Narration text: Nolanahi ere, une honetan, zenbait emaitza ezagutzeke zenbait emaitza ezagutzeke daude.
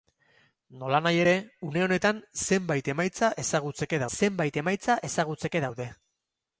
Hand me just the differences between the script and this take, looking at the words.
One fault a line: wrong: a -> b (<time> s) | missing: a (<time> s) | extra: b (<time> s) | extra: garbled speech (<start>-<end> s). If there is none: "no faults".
no faults